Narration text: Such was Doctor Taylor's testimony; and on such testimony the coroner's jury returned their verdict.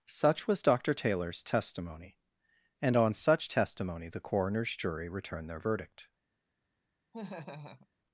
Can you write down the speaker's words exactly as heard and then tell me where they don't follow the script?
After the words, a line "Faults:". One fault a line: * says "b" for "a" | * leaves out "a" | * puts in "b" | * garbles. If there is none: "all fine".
Such was Doctor Taylor's testimony; and on such testimony the coroner's jury returned their verdict.
Faults:
all fine